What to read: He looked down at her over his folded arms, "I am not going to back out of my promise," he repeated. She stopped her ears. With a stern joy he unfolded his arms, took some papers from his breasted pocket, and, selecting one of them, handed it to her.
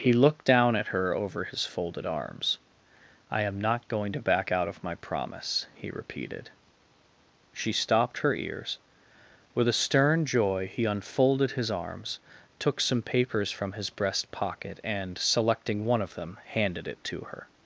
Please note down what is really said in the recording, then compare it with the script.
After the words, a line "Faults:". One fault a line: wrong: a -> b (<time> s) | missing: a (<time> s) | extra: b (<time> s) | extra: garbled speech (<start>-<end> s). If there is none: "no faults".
He looked down at her over his folded arms, "I am not going to back out of my promise," he repeated. She stopped her ears. With a stern joy he unfolded his arms, took some papers from his breast pocket, and, selecting one of them, handed it to her.
Faults:
wrong: breasted -> breast (13.9 s)